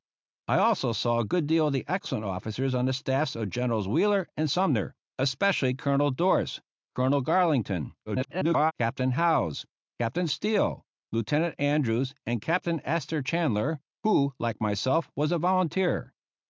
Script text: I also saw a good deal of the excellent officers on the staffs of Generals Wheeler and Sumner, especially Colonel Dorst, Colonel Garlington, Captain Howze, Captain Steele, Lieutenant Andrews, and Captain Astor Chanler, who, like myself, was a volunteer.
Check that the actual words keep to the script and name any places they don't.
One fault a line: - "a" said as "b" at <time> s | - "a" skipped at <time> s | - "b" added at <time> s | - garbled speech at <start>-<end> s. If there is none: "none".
- garbled speech at 8.1-8.7 s